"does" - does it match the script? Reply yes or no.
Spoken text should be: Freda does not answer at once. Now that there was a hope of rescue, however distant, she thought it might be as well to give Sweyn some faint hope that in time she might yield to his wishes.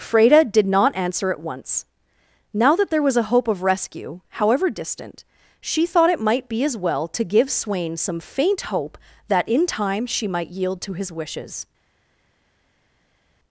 no